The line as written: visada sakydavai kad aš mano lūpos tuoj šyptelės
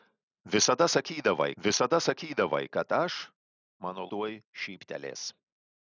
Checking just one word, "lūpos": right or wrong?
wrong